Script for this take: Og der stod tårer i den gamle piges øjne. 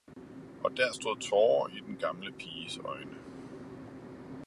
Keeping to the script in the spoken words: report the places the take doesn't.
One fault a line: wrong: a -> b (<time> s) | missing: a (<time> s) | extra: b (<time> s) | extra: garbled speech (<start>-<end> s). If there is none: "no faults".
no faults